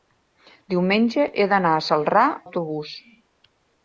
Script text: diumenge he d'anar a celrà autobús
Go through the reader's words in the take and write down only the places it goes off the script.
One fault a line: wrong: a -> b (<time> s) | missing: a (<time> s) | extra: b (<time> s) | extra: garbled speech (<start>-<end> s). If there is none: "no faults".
no faults